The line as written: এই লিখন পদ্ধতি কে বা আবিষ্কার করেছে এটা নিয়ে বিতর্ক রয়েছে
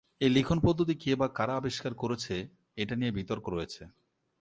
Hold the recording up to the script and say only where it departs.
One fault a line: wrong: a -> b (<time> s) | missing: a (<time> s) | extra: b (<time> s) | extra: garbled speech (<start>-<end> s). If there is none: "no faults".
extra: কারা (1.3 s)